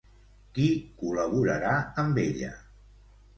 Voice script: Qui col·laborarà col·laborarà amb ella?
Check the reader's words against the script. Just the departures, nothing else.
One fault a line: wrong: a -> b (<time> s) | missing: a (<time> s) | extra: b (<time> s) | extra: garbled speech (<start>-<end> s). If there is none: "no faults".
missing: col·laborarà (1.8 s)